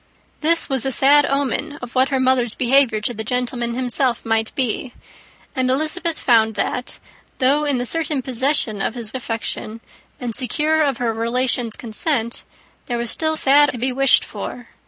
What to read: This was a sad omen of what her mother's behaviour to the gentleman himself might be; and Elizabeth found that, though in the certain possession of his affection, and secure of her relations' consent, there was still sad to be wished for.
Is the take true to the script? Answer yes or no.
yes